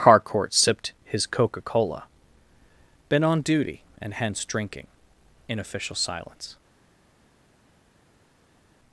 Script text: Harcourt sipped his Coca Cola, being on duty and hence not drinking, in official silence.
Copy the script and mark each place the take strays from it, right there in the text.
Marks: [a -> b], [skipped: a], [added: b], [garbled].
Harcourt sipped his Coca Cola, [being -> been] on duty and hence [skipped: not] drinking, in official silence.